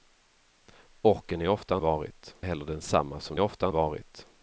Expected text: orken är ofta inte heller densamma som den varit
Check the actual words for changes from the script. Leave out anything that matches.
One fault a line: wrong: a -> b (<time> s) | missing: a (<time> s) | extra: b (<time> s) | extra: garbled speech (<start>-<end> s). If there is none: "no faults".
wrong: inte -> varit (1.8 s)
wrong: den -> ofta (3.4 s)